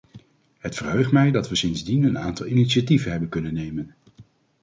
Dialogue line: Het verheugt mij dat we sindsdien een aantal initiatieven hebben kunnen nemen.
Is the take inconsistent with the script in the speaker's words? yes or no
no